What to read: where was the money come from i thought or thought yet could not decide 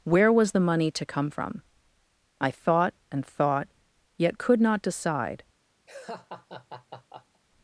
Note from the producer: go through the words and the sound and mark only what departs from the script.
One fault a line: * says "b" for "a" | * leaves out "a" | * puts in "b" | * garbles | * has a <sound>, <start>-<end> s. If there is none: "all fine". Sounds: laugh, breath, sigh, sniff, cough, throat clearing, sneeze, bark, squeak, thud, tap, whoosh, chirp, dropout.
* puts in "to"
* says "and" for "or"
* has a laugh, 5.9-7.4 s